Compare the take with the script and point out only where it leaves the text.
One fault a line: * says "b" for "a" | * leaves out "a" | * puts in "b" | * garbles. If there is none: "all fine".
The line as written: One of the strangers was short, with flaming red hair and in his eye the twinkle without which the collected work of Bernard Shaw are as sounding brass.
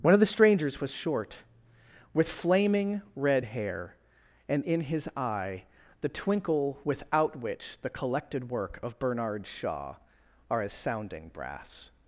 all fine